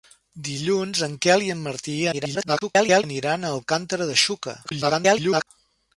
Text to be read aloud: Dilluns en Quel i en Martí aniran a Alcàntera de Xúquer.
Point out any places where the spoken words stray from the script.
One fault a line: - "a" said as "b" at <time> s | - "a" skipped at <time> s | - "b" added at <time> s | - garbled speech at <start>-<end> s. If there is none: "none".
- garbled speech at 2.1-3.0 s
- garbled speech at 4.6-5.5 s